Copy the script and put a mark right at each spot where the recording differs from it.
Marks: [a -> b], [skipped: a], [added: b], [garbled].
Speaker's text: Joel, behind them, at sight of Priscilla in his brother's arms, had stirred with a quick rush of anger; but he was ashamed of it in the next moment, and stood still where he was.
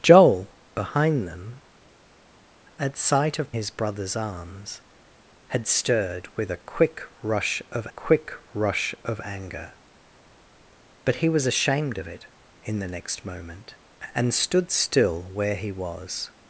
Joel, behind them, at sight of [skipped: Priscilla in] his brother's arms, had stirred with a quick rush of [added: quick rush of] anger; but he was ashamed of it in the next moment, and stood still where he was.